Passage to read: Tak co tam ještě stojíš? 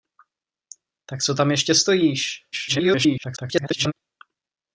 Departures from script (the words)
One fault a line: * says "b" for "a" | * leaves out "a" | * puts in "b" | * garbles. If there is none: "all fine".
* garbles